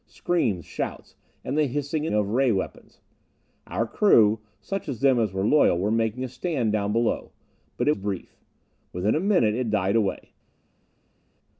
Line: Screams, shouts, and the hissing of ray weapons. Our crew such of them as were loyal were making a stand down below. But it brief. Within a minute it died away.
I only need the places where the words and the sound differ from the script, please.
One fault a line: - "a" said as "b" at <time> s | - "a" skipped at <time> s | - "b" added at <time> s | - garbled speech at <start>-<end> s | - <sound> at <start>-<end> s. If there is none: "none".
none